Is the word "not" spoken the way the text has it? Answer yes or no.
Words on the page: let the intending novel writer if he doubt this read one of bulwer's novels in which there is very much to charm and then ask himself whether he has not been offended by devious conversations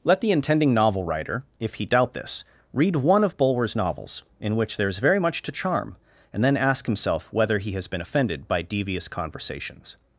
no